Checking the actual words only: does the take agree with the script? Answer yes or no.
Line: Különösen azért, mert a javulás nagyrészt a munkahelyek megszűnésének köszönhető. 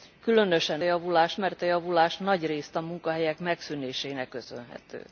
no